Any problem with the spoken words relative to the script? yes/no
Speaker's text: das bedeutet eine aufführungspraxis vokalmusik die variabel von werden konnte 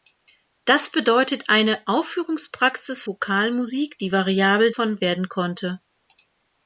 no